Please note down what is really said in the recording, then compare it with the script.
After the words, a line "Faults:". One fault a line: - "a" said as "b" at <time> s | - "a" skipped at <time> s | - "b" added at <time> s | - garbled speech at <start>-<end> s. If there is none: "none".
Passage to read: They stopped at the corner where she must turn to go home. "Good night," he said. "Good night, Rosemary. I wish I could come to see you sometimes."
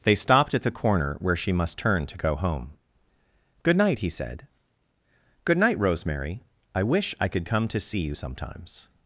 They stopped at the corner where she must turn to go home. "Good night," he said. "Good night, Rosemary. I wish I could come to see you sometimes."
Faults:
none